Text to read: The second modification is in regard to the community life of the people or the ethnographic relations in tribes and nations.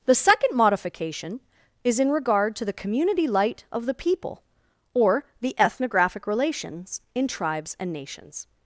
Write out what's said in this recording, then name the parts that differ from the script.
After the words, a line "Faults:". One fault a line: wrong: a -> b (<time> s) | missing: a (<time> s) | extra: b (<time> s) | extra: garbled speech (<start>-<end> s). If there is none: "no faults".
The second modification is in regard to the community light of the people or the ethnographic relations in tribes and nations.
Faults:
wrong: life -> light (3.3 s)